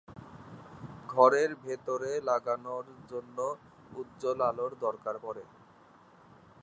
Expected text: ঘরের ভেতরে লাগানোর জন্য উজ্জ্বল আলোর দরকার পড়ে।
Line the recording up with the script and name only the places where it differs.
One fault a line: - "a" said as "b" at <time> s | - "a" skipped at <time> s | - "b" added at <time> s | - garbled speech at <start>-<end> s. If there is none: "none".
none